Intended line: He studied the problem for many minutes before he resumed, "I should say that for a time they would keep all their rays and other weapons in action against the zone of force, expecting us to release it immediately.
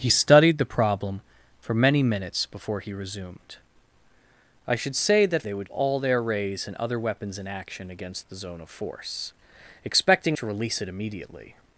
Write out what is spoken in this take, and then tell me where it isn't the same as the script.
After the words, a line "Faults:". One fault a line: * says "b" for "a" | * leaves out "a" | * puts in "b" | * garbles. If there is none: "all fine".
He studied the problem for many minutes before he resumed, "I should say that they would all their rays and other weapons in action against the zone of force, expecting to release it immediately.
Faults:
* leaves out "for a time"
* leaves out "keep"
* leaves out "us"